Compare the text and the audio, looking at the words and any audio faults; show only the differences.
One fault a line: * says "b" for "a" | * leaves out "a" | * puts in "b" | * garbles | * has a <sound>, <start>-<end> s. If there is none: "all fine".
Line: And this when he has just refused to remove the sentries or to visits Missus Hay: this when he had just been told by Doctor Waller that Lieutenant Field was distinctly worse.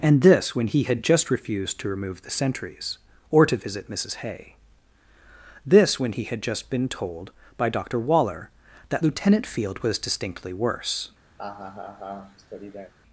* says "had" for "has"
* says "visit" for "visits"
* has a laugh, 11.4-12.9 s